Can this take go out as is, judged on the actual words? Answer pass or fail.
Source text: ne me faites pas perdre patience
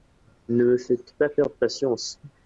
pass